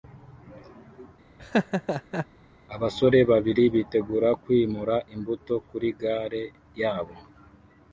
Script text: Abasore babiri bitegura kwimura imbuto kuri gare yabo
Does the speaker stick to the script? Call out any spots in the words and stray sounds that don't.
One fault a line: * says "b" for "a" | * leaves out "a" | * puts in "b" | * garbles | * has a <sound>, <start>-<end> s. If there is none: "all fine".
* has a laugh, 1.4-2.3 s